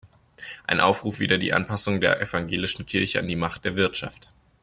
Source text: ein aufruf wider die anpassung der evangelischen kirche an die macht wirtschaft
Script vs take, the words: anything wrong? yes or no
yes